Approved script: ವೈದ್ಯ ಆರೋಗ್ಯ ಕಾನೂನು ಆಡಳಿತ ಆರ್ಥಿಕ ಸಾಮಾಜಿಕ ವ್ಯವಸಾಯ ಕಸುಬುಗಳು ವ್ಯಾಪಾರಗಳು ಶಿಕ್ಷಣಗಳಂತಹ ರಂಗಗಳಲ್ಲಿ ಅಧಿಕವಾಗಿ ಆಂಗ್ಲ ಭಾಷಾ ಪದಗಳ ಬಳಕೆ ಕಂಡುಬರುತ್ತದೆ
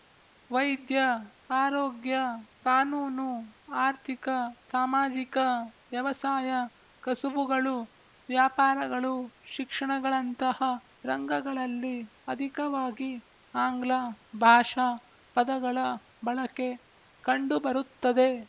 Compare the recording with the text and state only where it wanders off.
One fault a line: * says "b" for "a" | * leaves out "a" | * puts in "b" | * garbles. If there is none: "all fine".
* leaves out "ಆಡಳಿತ"